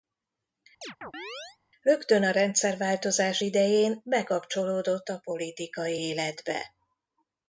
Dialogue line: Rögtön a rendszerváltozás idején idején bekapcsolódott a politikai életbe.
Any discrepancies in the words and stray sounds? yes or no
yes